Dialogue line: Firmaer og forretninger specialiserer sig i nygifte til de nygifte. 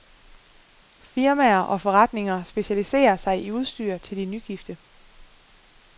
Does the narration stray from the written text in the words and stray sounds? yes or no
yes